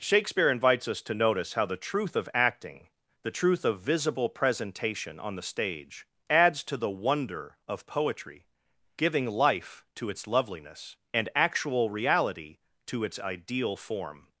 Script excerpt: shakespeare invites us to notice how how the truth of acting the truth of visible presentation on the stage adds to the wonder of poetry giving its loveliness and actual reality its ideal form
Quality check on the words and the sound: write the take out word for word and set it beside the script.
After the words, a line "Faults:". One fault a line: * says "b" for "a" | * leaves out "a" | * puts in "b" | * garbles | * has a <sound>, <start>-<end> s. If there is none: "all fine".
shakespeare invites us to notice how the truth of acting the truth of visible presentation on the stage adds to the wonder of poetry giving life to its loveliness and actual reality to its ideal form
Faults:
* leaves out "how"
* puts in "life to"
* puts in "to"